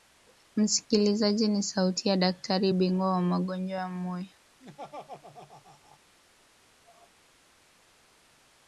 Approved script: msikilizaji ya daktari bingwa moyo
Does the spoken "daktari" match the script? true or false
true